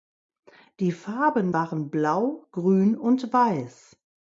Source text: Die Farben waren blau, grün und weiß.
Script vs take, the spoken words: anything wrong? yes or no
no